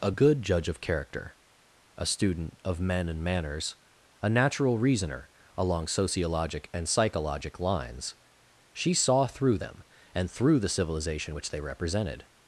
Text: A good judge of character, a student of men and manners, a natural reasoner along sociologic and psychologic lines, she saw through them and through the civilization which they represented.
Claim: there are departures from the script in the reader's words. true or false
false